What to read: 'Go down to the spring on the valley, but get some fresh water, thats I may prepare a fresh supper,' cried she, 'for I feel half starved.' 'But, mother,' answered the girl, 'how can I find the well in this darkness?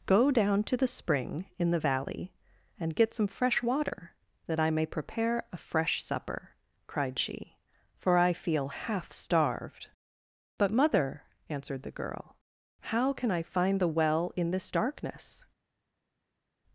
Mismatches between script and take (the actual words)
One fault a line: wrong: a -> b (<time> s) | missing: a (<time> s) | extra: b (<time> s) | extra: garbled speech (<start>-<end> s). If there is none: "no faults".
wrong: on -> in (1.6 s)
wrong: but -> and (2.8 s)
wrong: thats -> that (4.5 s)